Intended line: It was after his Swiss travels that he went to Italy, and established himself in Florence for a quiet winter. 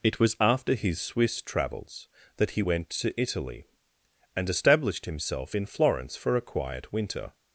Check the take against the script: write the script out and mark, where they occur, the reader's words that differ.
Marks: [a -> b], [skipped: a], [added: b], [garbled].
It was after his Swiss travels that he went to Italy, and established himself in Florence for a quiet winter.